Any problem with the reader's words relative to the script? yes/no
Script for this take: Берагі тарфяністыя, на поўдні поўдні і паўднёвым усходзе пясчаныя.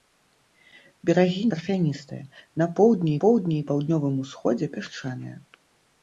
no